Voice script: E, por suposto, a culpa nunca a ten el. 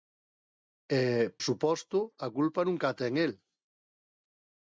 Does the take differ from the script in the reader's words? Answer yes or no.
yes